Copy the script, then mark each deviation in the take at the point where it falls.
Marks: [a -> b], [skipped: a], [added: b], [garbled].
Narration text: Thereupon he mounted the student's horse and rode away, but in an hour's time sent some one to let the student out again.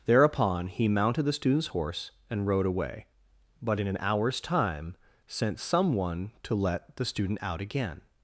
Thereupon he mounted the student's horse and rode away, but in an hour's time sent some one to let the student out again.